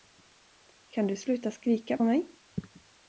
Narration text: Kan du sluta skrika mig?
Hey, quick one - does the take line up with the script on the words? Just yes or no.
yes